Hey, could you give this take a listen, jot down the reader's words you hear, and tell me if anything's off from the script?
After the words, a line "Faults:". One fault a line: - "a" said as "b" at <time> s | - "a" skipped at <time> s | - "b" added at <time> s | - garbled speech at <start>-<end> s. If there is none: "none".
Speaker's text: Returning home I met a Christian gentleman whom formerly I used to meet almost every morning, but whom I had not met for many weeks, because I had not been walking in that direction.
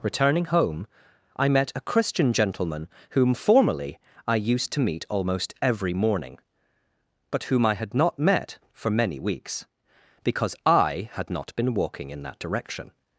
Returning home I met a Christian gentleman whom formerly I used to meet almost every morning, but whom I had not met for many weeks, because I had not been walking in that direction.
Faults:
none